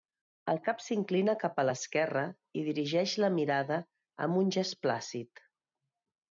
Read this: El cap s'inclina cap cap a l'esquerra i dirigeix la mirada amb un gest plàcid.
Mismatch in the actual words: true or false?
true